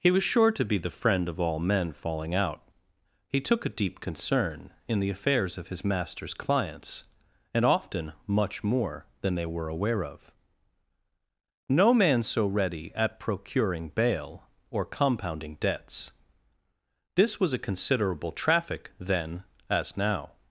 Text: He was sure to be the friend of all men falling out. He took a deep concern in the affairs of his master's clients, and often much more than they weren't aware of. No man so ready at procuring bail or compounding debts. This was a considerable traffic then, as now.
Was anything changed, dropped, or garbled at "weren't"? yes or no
yes